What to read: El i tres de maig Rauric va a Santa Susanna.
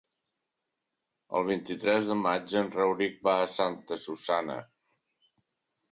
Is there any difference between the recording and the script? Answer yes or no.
yes